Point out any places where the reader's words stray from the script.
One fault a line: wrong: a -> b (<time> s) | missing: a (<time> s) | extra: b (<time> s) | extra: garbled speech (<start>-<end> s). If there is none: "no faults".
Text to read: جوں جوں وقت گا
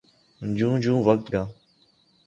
no faults